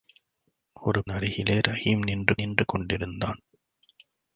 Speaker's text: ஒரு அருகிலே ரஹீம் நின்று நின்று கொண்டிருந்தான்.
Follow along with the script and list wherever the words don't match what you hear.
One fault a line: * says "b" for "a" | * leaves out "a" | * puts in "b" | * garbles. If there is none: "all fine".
all fine